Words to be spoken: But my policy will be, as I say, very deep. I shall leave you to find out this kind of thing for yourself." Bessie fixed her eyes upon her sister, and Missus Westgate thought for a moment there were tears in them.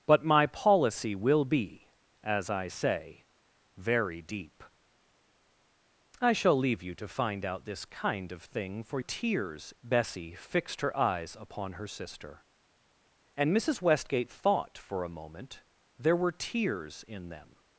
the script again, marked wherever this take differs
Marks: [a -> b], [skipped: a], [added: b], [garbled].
But my policy will be, as I say, very deep. I shall leave you to find out this kind of thing for [yourself." -> tears] Bessie fixed her eyes upon her sister, and Missus Westgate thought for a moment there were tears in them.